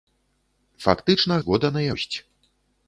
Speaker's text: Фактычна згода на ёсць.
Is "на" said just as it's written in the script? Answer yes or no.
yes